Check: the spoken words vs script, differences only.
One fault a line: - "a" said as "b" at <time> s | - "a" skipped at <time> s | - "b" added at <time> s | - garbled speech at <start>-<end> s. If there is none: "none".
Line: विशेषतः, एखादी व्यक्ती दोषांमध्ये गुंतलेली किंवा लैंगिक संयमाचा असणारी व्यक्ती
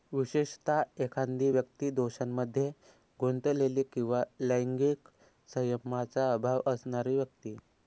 - "अभाव" added at 6.3 s